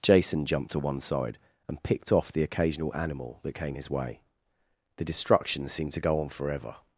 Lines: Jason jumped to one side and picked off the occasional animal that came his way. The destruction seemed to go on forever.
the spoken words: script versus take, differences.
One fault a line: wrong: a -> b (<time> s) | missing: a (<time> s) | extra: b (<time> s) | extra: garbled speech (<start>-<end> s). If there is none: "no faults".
no faults